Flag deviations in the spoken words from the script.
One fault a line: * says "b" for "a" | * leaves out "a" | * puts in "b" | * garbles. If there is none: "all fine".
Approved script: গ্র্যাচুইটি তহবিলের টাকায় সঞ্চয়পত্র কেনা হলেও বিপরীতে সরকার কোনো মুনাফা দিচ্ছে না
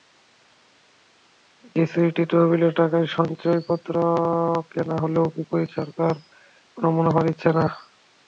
all fine